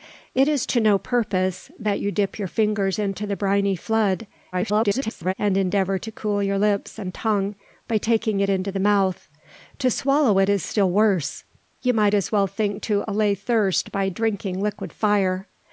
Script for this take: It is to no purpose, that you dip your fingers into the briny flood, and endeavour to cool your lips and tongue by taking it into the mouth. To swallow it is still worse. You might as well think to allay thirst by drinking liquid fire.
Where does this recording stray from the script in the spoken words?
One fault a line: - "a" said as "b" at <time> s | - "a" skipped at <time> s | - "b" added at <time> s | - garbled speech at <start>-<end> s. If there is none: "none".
- garbled speech at 4.5-5.3 s